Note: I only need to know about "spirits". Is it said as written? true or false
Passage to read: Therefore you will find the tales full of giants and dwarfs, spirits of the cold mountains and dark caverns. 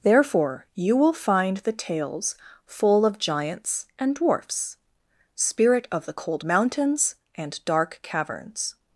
false